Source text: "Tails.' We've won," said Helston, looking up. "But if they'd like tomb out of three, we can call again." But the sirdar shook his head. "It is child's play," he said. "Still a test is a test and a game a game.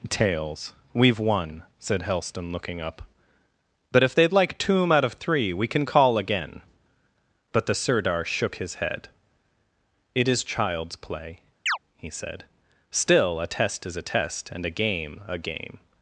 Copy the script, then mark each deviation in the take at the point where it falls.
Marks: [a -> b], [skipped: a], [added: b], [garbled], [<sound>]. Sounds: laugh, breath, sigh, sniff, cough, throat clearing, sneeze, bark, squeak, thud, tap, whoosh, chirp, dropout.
"Tails.' We've won," said Helston, looking up. "But if they'd like tomb out of three, we can call again." But the sirdar shook his head. "It is child's play," [chirp] he said. "Still a test is a test and a game a game.